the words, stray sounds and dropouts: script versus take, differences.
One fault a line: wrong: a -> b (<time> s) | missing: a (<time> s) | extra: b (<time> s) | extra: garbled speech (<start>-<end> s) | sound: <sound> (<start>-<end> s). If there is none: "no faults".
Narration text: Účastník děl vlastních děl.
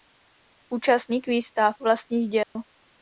wrong: děl -> výstav (1.3 s)
sound: dropout (2.4-2.6 s)